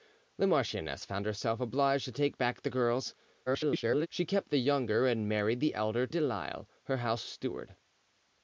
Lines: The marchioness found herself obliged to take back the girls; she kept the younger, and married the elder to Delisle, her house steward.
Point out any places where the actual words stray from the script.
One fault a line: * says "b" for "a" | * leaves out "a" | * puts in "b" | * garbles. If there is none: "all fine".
* garbles
* leaves out "to"